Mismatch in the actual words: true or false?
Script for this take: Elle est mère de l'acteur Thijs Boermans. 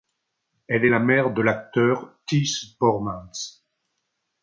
true